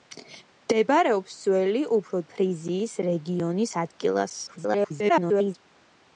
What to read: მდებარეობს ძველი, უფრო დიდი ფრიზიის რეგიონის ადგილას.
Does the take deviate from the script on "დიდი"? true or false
true